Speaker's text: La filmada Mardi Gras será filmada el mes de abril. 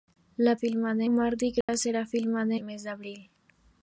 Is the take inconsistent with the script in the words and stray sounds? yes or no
yes